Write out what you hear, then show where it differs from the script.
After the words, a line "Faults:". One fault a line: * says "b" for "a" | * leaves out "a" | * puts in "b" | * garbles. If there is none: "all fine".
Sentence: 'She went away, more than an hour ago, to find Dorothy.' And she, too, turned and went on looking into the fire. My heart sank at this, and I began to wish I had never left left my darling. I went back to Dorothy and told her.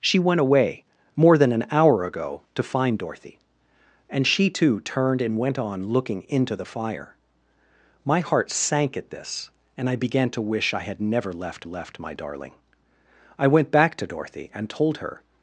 'She went away, more than an hour ago, to find Dorothy.' And she, too, turned and went on looking into the fire. My heart sank at this, and I began to wish I had never left left my darling. I went back to Dorothy and told her.
Faults:
all fine